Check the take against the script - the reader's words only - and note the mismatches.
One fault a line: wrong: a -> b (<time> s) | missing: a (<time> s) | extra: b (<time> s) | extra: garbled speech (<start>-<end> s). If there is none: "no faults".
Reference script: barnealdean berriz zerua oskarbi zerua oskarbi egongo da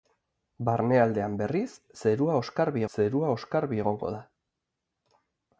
no faults